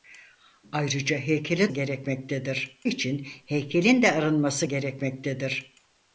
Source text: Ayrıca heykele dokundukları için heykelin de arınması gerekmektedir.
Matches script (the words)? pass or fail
fail